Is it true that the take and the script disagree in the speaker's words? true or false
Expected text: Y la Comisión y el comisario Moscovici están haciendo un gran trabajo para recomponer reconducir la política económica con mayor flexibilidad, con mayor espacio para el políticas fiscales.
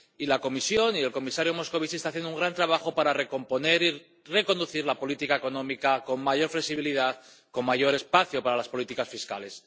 true